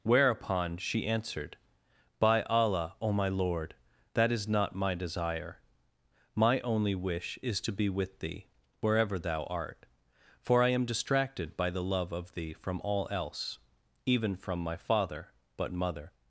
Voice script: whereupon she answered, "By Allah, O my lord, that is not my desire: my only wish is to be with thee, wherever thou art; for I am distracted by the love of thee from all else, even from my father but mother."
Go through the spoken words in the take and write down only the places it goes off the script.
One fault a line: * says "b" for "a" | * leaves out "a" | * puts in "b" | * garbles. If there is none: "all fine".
all fine